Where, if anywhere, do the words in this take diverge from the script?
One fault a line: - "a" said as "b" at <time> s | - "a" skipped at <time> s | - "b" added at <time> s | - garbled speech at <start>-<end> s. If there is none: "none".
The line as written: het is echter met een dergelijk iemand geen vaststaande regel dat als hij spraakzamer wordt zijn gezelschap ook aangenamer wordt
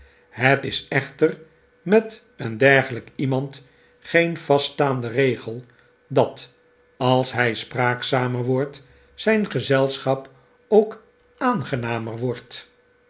none